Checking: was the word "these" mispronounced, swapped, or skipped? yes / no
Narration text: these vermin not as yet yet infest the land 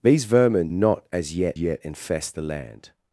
no